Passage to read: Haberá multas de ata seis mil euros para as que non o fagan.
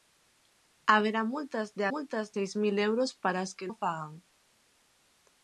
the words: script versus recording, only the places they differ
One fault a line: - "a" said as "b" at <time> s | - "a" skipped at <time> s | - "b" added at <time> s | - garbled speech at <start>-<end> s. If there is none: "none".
- "ata" said as "multas" at 1.9 s
- "non" skipped at 3.7 s